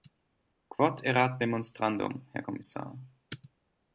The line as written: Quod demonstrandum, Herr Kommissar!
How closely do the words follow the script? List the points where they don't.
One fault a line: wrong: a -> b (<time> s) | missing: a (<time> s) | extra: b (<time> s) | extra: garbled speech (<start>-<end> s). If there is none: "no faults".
extra: erat (1.0 s)